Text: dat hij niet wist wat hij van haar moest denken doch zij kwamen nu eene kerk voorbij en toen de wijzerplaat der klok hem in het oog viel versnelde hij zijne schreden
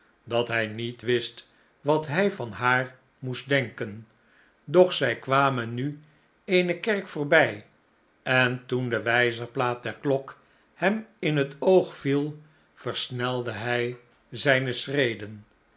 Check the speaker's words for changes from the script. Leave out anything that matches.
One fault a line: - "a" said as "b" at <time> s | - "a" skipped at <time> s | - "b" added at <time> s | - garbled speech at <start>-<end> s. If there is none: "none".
none